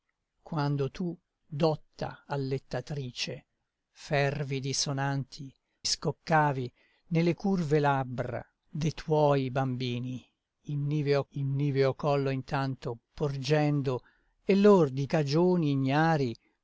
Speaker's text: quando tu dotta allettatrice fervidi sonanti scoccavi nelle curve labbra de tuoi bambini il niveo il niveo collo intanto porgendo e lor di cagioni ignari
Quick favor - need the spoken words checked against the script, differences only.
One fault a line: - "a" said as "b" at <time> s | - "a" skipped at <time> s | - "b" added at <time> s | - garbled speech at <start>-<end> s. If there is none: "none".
none